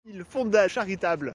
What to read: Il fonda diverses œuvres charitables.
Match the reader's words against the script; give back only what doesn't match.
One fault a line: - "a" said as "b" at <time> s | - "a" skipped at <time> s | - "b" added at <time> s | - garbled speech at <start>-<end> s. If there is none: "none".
- "diverses œuvres" skipped at 0.7 s